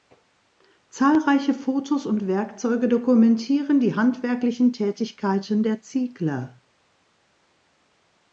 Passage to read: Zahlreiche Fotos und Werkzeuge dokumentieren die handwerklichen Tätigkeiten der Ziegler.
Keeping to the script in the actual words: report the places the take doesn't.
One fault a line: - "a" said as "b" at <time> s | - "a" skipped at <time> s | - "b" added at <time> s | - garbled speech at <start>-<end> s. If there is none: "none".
none